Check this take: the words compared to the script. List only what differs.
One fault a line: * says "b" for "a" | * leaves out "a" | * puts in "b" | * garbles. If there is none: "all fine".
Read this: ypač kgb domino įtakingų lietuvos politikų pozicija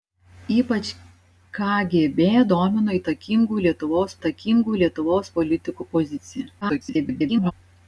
* puts in "įtakingų lietuvos"
* garbles